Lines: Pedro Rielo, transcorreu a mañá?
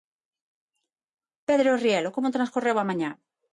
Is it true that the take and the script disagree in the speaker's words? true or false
true